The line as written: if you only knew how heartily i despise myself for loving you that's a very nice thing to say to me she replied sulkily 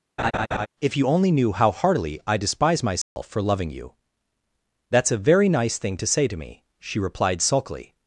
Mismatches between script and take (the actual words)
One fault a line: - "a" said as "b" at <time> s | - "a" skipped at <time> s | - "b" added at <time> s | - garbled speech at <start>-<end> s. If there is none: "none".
none